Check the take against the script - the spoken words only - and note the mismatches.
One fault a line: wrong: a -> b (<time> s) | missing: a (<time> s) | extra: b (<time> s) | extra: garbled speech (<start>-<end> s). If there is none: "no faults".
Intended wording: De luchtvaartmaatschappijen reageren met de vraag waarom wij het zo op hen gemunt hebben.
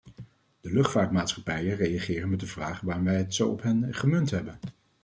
no faults